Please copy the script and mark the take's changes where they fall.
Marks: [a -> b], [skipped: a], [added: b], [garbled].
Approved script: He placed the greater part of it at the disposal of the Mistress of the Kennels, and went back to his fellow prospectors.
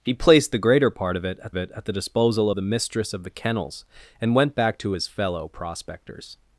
He placed the greater part of it at [added: it at] the disposal [skipped: of] the Mistress of the Kennels, and went back to his fellow prospectors.